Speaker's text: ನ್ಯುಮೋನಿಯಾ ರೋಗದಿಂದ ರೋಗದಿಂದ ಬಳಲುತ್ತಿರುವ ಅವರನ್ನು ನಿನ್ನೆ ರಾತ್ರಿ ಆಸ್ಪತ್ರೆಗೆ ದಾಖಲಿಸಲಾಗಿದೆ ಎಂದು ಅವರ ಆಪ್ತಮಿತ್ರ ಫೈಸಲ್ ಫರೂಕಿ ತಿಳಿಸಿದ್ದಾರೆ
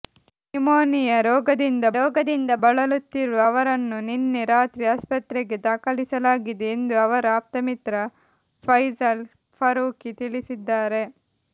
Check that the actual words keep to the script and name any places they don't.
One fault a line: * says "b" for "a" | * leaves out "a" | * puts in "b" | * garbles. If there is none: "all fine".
all fine